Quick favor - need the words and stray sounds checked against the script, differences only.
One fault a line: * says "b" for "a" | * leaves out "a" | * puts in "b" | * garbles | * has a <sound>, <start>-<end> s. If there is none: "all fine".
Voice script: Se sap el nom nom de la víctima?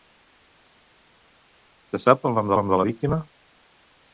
all fine